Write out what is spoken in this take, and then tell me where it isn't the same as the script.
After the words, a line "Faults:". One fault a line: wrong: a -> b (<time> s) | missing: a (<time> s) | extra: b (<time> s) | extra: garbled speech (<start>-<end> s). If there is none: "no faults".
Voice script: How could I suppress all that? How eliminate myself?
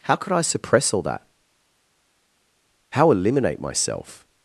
How could I suppress all that? How eliminate myself?
Faults:
no faults